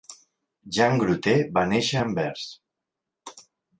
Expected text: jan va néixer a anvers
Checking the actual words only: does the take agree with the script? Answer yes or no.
no